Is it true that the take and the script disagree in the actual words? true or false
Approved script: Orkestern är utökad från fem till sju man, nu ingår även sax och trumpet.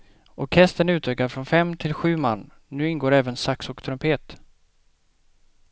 false